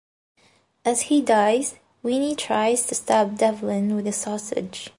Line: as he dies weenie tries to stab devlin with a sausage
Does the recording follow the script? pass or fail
pass